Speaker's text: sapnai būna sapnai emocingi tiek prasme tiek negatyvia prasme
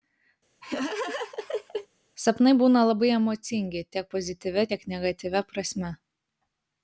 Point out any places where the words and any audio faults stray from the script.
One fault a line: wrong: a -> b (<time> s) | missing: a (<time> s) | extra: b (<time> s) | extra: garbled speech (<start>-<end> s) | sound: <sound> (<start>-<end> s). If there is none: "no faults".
sound: laugh (0.6-1.9 s)
wrong: sapnai -> labai (2.9 s)
wrong: prasme -> pozityvia (4.1 s)